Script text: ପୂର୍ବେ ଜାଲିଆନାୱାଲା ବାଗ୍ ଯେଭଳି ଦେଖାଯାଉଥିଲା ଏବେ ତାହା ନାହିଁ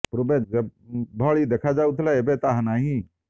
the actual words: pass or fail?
fail